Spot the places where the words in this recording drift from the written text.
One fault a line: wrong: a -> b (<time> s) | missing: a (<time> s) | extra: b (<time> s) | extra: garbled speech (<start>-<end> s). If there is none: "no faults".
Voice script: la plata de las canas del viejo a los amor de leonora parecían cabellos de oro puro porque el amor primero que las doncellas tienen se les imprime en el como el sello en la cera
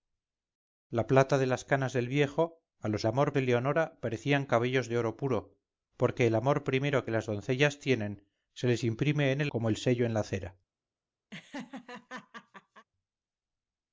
no faults